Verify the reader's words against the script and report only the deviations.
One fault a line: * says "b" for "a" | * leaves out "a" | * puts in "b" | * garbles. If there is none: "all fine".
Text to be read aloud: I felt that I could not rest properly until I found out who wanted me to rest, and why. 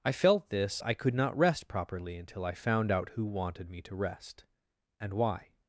* says "this" for "that"